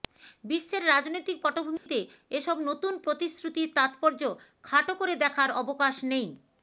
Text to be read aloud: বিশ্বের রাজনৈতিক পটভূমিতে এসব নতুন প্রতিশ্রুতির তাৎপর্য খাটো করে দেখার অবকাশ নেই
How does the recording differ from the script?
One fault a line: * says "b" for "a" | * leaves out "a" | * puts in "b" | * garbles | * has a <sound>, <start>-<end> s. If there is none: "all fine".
* has a dropout, 1.8-1.9 s